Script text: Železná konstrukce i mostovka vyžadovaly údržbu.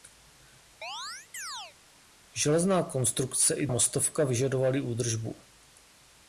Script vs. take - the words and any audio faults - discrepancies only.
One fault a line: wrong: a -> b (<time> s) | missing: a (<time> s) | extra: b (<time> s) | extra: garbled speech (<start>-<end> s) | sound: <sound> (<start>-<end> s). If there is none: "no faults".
sound: chirp (0.8-1.8 s)